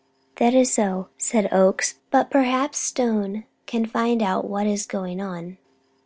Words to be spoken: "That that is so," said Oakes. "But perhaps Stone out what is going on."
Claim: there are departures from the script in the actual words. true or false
true